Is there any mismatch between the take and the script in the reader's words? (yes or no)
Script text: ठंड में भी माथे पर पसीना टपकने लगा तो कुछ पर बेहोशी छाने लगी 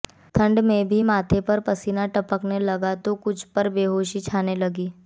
no